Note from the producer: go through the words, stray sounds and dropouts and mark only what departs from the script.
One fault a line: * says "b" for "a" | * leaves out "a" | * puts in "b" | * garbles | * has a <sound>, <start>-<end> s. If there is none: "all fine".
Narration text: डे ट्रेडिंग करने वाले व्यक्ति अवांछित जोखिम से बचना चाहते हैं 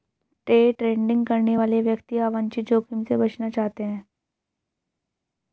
all fine